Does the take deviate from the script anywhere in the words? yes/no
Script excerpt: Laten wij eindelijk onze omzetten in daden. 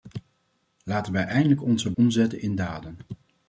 no